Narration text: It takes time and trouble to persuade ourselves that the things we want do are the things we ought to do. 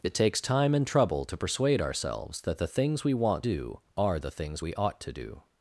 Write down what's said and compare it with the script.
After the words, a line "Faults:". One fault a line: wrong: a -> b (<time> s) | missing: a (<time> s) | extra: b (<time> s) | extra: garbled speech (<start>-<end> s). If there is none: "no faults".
It takes time and trouble to persuade ourselves that the things we want do are the things we ought to do.
Faults:
no faults